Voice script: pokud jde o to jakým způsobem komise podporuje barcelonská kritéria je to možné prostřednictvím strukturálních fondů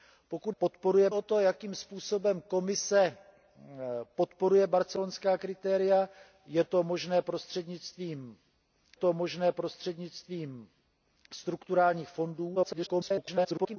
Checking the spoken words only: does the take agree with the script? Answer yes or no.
no